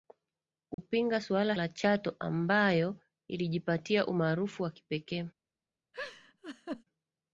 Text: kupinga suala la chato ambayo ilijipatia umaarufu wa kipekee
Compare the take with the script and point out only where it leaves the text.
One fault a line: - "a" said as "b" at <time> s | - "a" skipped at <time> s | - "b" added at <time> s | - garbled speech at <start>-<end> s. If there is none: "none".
none